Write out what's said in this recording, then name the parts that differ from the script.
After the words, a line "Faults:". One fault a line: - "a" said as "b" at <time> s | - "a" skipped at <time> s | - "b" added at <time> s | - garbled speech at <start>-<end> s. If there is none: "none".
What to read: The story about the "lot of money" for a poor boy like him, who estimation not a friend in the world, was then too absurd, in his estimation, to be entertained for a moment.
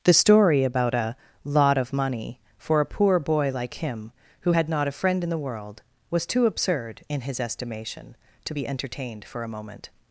The story about a "lot of money" for a poor boy like him, who had not a friend in the world, was too absurd, in his estimation, to be entertained for a moment.
Faults:
- "the" said as "a" at 0.9 s
- "estimation" said as "had" at 4.5 s
- "then" skipped at 6.2 s